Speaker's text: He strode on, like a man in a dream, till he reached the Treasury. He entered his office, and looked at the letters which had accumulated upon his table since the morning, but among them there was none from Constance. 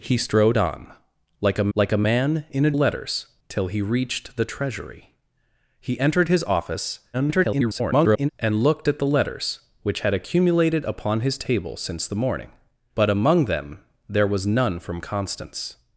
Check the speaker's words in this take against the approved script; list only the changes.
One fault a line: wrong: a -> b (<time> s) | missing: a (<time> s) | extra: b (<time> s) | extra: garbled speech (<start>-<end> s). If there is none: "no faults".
extra: like a (1.7 s)
wrong: dream -> letters (2.7 s)
extra: garbled speech (7.1-8.3 s)